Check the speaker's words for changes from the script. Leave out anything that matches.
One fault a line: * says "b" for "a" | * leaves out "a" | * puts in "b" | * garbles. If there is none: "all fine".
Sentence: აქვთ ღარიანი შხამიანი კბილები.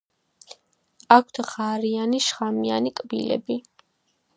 all fine